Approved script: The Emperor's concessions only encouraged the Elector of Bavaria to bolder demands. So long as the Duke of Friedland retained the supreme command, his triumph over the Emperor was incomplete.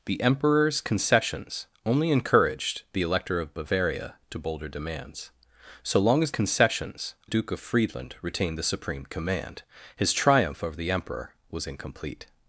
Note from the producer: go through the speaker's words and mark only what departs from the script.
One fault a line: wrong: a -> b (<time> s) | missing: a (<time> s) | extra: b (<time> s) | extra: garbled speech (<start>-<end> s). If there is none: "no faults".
wrong: the -> concessions (6.3 s)